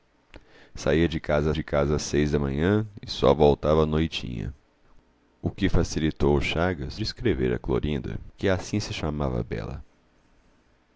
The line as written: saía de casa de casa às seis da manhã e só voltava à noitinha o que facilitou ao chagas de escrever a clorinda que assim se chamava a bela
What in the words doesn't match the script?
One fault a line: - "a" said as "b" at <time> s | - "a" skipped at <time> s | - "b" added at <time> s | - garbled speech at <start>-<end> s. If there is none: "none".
none